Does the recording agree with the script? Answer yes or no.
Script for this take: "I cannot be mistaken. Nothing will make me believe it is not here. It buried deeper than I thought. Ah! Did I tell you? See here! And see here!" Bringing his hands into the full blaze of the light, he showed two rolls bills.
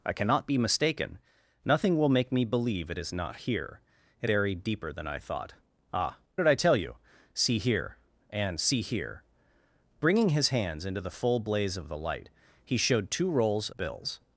yes